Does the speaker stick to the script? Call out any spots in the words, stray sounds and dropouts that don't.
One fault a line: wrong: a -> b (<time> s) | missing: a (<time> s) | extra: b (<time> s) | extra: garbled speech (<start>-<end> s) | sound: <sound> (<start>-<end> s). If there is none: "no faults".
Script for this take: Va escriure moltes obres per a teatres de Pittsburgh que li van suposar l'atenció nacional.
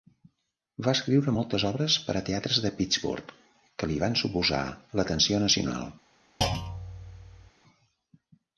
sound: thud (6.4-7.5 s)